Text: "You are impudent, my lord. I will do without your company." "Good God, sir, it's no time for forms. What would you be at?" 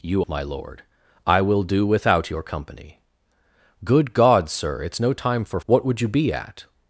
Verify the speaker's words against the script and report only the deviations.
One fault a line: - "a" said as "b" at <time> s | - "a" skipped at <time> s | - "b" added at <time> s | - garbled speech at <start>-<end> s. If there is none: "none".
- "are impudent" skipped at 0.2 s
- "forms" skipped at 5.6 s